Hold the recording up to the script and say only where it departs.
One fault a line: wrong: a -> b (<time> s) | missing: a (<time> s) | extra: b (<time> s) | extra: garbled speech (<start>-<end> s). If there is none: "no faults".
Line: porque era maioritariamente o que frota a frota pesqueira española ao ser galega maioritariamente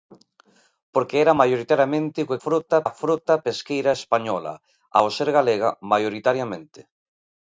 no faults